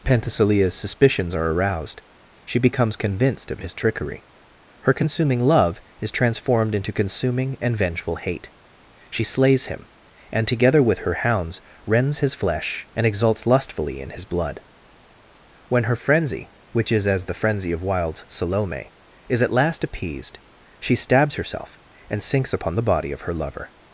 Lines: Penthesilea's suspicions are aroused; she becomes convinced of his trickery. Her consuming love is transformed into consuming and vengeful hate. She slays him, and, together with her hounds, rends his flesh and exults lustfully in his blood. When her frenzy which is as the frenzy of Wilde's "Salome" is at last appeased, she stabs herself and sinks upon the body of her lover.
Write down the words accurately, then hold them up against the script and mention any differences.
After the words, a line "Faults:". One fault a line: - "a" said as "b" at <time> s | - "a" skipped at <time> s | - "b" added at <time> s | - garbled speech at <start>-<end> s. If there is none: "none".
Penthesilea's suspicions are aroused; she becomes convinced of his trickery. Her consuming love is transformed into consuming and vengeful hate. She slays him, and, together with her hounds, rends his flesh and exults lustfully in his blood. When her frenzy which is as the frenzy of Wilde's "Salome" is at last appeased, she stabs herself and sinks upon the body of her lover.
Faults:
none